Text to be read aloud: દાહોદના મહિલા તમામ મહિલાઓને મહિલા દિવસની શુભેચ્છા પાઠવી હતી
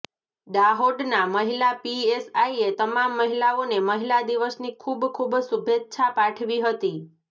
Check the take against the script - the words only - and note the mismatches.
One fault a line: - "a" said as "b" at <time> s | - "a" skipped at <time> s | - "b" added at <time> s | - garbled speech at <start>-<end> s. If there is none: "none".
- "પીએસઆઈએ" added at 1.8 s
- "ખૂબ ખૂબ" added at 4.8 s